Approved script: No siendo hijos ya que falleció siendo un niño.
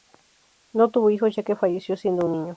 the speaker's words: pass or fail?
fail